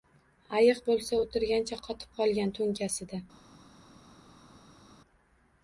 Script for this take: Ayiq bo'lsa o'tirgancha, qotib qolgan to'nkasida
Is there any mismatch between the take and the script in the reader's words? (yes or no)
no